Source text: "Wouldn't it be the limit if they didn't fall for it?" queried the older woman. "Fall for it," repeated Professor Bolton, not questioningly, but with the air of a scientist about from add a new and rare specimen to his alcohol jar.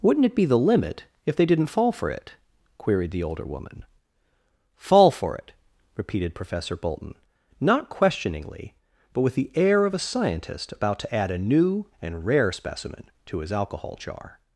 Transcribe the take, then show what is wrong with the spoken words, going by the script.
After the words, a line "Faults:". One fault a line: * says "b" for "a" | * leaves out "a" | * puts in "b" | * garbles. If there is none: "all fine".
"Wouldn't it be the limit if they didn't fall for it?" queried the older woman. "Fall for it," repeated Professor Bolton, not questioningly, but with the air of a scientist about to add a new and rare specimen to his alcohol jar.
Faults:
* says "to" for "from"